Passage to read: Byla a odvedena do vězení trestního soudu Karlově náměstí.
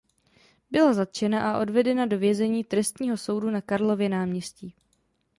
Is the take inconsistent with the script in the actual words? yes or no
yes